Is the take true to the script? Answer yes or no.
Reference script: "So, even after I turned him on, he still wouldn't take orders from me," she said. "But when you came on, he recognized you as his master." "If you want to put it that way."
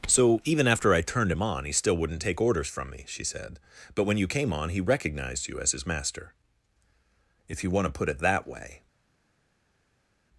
yes